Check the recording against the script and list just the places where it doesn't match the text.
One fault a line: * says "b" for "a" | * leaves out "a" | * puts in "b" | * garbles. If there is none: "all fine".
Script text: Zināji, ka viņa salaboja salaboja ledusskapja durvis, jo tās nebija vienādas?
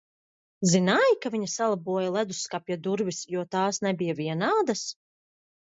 * leaves out "salaboja"